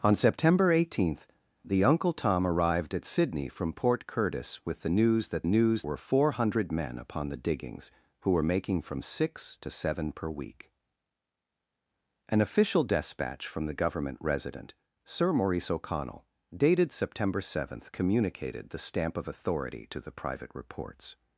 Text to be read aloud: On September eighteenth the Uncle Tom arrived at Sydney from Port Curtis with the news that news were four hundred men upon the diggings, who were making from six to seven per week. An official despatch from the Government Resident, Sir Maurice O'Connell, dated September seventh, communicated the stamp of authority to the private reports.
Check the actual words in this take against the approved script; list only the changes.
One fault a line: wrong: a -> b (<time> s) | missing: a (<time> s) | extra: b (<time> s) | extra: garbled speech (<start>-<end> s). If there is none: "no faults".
no faults